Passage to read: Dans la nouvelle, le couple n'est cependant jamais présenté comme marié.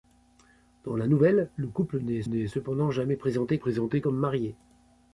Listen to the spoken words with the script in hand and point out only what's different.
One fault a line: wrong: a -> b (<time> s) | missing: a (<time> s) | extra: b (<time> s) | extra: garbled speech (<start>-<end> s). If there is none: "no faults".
extra: n'est (2.2 s)
extra: présenté (3.6 s)